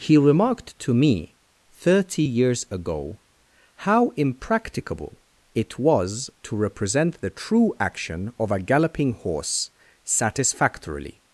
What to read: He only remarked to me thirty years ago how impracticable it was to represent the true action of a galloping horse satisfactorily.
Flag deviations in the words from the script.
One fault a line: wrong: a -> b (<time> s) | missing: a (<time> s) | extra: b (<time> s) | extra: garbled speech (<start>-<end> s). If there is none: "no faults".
missing: only (0.2 s)